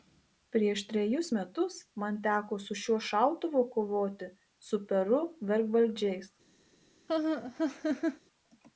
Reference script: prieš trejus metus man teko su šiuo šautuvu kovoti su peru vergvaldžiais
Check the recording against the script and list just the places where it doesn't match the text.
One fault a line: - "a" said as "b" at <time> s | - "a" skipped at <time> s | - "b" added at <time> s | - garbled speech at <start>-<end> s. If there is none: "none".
none